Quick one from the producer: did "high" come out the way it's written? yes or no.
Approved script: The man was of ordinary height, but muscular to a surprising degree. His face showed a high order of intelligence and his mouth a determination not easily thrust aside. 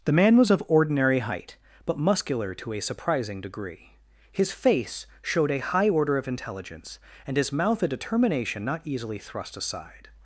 yes